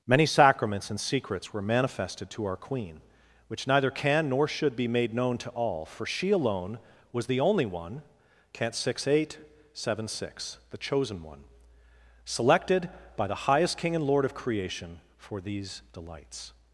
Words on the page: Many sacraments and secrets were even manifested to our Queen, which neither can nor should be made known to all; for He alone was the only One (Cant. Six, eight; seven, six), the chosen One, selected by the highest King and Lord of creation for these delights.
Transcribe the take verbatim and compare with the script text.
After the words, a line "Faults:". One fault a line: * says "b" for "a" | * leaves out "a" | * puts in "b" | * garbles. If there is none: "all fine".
Many sacraments and secrets were manifested to our Queen, which neither can nor should be made known to all; for She alone was the only One (Cant. Six, eight; seven, six), the chosen One, selected by the highest King and Lord of creation for these delights.
Faults:
* leaves out "even"
* says "She" for "He"